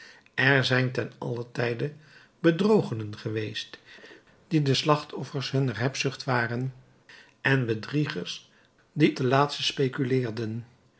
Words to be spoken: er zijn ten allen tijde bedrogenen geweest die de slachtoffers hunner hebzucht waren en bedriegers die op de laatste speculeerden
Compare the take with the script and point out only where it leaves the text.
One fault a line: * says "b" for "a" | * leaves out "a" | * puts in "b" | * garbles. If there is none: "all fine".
* leaves out "op"